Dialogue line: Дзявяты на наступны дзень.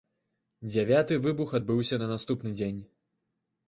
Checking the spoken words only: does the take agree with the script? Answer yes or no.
no